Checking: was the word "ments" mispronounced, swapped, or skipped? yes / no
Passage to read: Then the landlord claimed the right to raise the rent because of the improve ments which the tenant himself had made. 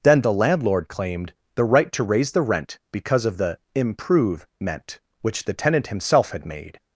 yes